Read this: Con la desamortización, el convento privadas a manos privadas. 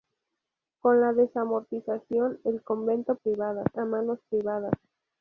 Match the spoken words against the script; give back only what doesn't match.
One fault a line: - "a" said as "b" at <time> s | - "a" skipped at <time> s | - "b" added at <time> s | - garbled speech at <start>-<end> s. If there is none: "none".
none